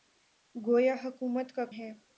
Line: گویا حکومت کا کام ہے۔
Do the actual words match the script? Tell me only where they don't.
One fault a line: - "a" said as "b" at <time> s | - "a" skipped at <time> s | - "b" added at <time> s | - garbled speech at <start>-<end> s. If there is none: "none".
- "کام" skipped at 1.6 s